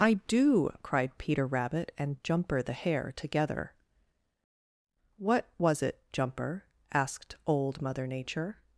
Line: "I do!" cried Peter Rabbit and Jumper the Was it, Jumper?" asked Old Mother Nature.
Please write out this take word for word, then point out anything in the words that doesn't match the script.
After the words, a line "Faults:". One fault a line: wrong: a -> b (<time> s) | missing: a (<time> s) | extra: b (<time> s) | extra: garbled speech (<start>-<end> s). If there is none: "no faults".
"I do!" cried Peter Rabbit and Jumper the Hare together. "What was it, Jumper?" asked Old Mother Nature.
Faults:
extra: Hare together What (2.7 s)